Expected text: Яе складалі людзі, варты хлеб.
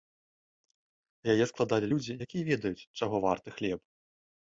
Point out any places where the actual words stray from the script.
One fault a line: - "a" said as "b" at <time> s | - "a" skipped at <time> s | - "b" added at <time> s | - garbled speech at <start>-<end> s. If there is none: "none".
- "якія ведаюць чаго" added at 2.3 s